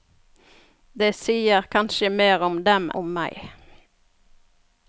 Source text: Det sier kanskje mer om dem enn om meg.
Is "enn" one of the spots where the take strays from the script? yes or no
yes